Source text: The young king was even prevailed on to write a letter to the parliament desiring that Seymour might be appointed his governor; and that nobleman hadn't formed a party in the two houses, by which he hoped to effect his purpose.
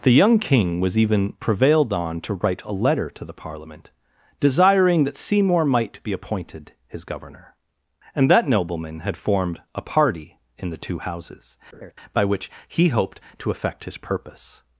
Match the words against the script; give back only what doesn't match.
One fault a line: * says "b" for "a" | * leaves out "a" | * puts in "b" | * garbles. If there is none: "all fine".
* says "had" for "hadn't"